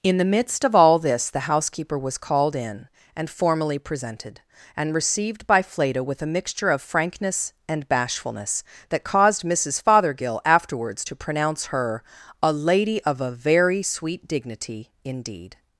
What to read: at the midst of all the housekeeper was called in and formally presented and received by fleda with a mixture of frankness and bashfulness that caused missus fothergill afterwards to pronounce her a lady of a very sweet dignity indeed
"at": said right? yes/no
no